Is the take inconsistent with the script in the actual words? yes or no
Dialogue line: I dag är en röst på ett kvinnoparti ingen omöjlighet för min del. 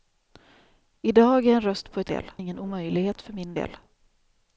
yes